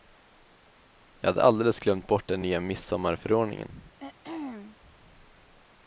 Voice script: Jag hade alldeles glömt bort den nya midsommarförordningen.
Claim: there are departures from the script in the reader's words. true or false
false